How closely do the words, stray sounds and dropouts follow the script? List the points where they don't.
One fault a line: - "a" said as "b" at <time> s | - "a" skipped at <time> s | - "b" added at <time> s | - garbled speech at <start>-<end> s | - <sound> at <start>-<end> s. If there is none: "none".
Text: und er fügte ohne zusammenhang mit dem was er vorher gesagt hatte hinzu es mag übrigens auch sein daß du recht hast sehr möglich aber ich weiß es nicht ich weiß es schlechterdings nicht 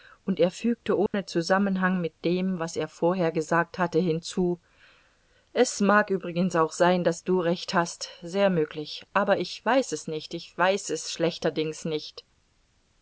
- dropout at 1.1-1.1 s